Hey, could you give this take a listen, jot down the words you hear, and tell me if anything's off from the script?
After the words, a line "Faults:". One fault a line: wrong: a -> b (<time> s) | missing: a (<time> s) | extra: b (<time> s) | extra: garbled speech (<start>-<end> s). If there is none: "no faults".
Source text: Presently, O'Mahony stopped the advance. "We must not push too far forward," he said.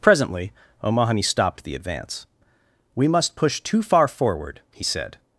Presently, O'Mahony stopped the advance. "We must push too far forward," he said.
Faults:
missing: not (3.4 s)